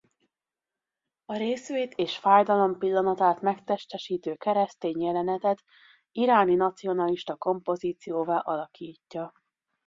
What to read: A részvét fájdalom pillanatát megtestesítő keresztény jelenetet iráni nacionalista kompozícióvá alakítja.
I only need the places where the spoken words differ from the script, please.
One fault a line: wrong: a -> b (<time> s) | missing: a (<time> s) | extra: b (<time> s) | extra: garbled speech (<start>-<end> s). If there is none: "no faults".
extra: és (1.9 s)